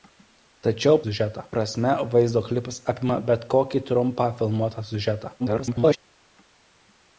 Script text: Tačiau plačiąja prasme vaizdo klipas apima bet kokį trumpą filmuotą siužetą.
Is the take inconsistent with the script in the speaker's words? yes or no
yes